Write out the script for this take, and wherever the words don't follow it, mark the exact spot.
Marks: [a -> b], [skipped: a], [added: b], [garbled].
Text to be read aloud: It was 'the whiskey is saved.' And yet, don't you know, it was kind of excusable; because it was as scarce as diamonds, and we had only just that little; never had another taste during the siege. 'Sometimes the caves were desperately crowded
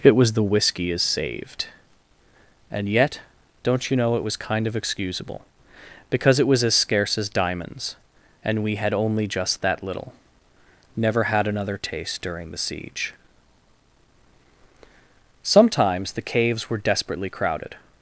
It was 'the whiskey is saved.' And yet, don't you know, it was kind of excusable; because it was as scarce as diamonds, and we had only just that little; never had another taste during the siege. 'Sometimes the caves were desperately crowded